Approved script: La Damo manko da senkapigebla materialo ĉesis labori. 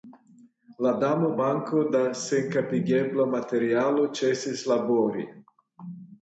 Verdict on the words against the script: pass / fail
pass